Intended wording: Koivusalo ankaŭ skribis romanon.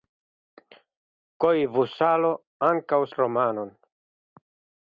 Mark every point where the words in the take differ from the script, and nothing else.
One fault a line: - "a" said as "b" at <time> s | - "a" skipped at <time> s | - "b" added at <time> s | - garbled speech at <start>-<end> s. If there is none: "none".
- "skribis" skipped at 3.0 s